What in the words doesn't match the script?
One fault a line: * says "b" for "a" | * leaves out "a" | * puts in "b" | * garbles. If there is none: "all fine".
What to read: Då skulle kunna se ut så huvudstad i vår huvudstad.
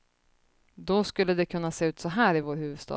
* puts in "det"
* says "här" for "huvudstad"